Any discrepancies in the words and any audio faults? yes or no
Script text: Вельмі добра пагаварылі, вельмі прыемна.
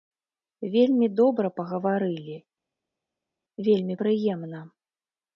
no